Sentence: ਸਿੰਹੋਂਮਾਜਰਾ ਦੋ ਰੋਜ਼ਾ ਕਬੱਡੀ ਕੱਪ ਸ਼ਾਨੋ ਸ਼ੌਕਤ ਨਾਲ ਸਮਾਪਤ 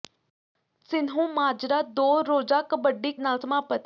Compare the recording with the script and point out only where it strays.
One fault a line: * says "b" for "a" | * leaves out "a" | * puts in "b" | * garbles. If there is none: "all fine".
* leaves out "ਕੱਪ ਸ਼ਾਨੋ ਸ਼ੌਕਤ"